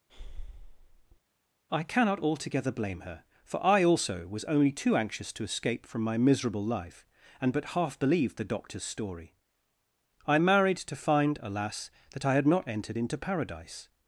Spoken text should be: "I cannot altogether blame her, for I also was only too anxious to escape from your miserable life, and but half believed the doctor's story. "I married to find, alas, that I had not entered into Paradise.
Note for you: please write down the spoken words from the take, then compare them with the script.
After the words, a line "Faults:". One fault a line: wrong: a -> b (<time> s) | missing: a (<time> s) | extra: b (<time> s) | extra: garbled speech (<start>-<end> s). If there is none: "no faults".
"I cannot altogether blame her, for I also was only too anxious to escape from my miserable life, and but half believed the doctor's story. "I married to find, alas, that I had not entered into Paradise.
Faults:
wrong: your -> my (6.0 s)